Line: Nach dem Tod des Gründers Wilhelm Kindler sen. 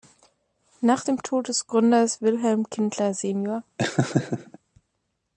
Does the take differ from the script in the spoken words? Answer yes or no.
no